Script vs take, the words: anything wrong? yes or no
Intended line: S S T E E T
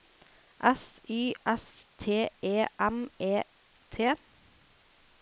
yes